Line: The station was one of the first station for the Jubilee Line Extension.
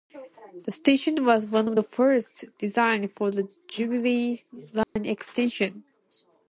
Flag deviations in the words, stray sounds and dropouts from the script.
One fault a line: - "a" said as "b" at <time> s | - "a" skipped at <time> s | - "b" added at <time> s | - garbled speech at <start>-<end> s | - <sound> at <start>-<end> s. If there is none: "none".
- "station" said as "designed" at 2.6 s
- dropout at 4.8-5.0 s